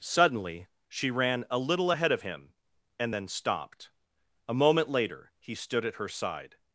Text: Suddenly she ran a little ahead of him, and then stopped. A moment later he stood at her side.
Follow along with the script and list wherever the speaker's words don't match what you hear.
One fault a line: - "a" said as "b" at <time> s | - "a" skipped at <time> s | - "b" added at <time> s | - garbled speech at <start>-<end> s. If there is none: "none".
none